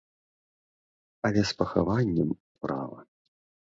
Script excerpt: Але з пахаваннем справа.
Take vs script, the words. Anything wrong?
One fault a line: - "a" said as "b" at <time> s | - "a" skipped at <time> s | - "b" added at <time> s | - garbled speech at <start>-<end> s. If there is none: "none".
none